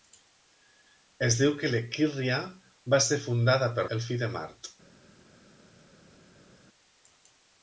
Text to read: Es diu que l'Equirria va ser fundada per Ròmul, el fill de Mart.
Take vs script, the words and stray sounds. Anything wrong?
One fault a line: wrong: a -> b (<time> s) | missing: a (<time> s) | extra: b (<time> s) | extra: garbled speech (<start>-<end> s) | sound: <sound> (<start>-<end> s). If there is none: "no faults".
missing: Ròmul (3.9 s)